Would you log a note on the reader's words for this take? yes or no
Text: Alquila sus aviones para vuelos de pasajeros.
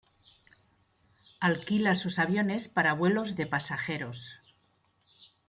no